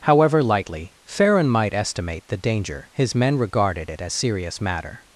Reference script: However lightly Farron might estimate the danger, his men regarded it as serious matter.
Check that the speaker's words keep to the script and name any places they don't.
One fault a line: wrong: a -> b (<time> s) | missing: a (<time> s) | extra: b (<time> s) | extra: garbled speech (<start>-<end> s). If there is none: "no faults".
no faults